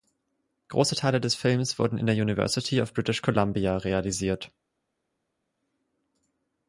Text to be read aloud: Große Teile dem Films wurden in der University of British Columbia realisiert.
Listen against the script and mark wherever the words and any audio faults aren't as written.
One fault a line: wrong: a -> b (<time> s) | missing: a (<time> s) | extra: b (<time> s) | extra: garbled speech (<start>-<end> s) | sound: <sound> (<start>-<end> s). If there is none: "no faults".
wrong: dem -> des (1.2 s)